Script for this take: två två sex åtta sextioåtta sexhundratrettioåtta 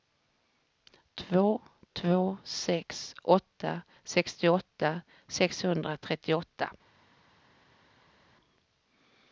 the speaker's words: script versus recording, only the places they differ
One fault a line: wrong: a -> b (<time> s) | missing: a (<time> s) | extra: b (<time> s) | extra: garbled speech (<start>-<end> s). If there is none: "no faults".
no faults